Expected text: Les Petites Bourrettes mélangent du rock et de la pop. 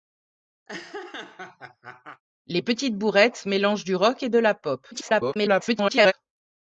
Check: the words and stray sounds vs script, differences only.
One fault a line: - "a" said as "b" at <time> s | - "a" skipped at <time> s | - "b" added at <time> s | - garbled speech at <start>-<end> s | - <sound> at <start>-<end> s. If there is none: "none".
- laugh at 0.7-2.2 s
- garbled speech at 4.9-6.1 s